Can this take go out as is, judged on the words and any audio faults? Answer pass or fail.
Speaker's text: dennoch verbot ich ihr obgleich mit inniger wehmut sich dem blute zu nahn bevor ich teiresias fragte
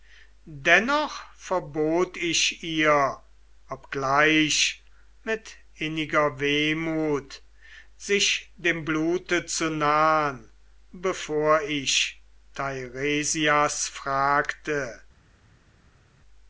pass